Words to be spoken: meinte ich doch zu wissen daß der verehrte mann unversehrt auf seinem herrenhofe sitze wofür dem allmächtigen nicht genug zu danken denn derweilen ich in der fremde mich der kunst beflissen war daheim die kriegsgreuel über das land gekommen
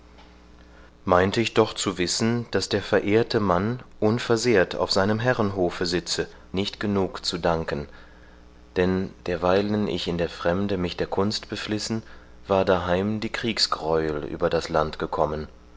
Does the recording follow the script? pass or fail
fail